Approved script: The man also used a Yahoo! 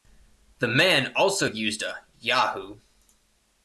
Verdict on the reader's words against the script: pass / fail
pass